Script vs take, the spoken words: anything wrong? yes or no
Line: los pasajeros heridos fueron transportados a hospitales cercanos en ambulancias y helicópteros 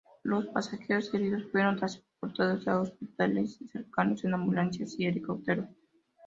no